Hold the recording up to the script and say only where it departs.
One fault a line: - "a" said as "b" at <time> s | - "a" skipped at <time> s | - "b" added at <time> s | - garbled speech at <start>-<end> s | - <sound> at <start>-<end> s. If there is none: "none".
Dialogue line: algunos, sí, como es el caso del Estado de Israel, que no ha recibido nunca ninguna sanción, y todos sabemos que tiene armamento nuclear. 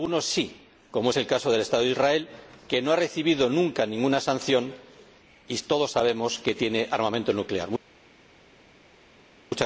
none